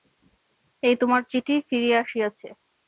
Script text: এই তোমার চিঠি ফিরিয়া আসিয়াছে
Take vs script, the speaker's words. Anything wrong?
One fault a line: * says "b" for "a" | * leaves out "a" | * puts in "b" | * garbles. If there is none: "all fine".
all fine